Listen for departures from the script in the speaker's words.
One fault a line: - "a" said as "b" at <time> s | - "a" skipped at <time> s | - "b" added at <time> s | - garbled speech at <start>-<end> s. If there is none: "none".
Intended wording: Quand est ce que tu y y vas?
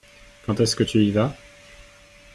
- "y" skipped at 1.1 s